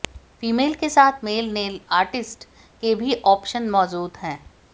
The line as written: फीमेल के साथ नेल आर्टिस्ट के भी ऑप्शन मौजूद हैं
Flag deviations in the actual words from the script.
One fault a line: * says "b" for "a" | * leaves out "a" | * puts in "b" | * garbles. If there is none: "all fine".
* puts in "मेल"